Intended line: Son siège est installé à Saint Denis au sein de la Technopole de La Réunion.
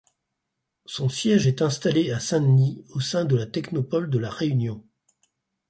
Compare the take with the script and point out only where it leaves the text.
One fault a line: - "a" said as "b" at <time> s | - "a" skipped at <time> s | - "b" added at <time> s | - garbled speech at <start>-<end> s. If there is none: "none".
none